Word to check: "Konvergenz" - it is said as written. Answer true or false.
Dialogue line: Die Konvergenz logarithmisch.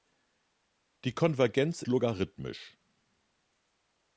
true